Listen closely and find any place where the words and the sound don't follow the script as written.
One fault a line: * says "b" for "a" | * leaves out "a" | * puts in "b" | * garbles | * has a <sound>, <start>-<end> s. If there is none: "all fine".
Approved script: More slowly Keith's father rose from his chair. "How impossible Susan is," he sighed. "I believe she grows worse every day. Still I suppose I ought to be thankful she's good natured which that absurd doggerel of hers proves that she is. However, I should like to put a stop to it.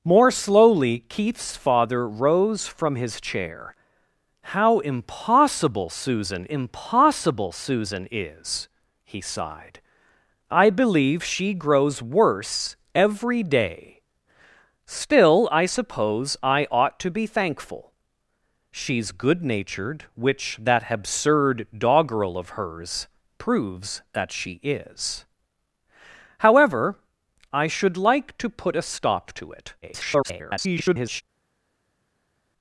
* puts in "impossible Susan"
* garbles